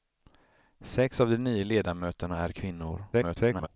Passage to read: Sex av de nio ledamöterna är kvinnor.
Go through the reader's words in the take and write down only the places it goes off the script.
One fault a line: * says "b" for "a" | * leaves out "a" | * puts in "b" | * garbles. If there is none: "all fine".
* garbles